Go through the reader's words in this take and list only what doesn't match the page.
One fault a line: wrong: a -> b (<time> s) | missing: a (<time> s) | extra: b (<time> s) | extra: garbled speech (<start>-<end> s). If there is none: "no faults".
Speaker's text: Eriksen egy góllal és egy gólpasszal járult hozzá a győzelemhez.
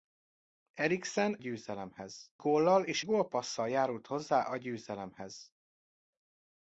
wrong: egy -> győzelemhez (1.4 s)
missing: egy (3.0 s)